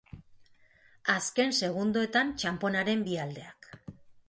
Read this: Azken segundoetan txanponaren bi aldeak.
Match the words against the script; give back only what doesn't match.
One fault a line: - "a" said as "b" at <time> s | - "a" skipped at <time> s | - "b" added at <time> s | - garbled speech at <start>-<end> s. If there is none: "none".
none